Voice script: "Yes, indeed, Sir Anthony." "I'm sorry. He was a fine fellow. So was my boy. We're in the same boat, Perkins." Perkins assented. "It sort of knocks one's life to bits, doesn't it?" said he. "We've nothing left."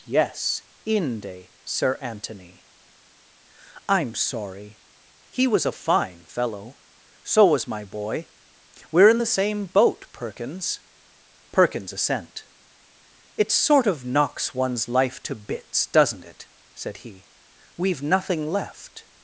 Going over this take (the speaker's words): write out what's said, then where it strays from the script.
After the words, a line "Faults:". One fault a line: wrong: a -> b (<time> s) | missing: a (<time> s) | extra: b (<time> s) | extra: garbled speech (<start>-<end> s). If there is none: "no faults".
"Yes, inde, Sir Anthony." "I'm sorry. He was a fine fellow. So was my boy. We're in the same boat, Perkins." Perkins assent. "It sort of knocks one's life to bits, doesn't it?" said he. "We've nothing left."
Faults:
wrong: indeed -> inde (0.8 s)
wrong: assented -> assent (11.9 s)